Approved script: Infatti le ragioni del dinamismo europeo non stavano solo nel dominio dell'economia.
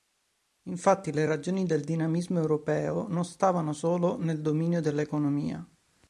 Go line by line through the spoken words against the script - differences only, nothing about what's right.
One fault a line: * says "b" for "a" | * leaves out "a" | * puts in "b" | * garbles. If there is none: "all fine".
all fine